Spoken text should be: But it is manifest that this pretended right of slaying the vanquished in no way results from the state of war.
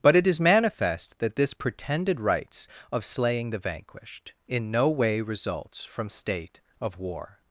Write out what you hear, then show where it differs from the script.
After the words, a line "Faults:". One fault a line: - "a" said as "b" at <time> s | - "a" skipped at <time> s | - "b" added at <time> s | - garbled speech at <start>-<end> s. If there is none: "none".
But it is manifest that this pretended rights of slaying the vanquished in no way results from state of war.
Faults:
- "right" said as "rights" at 2.2 s
- "the" skipped at 6.1 s